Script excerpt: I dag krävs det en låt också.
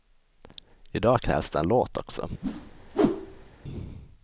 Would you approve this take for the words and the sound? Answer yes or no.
no